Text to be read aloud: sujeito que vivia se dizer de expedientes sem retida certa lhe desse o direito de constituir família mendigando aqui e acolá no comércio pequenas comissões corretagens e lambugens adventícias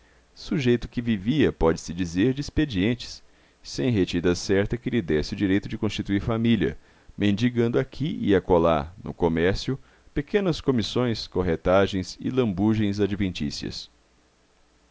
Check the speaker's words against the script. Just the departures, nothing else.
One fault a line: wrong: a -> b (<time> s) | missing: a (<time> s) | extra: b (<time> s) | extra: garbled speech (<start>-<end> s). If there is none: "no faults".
extra: pode (1.5 s)
extra: que (4.8 s)